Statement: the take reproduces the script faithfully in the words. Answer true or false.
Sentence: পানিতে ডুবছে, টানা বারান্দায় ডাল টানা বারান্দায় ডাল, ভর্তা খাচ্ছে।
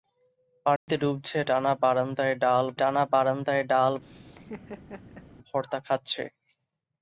true